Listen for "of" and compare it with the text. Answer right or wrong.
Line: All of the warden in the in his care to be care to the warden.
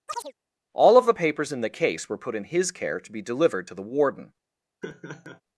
right